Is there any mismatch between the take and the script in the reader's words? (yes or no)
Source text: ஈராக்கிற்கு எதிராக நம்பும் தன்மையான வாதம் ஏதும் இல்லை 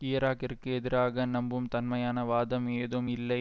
no